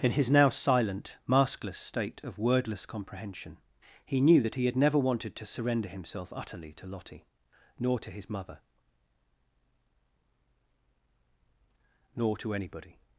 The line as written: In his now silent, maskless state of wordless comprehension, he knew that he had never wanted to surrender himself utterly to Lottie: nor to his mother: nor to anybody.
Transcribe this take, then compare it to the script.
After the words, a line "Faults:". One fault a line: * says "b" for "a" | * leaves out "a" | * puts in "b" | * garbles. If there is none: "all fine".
In his now silent, maskless state of wordless comprehension, he knew that he had never wanted to surrender himself utterly to Lottie: nor to his mother: nor to anybody.
Faults:
all fine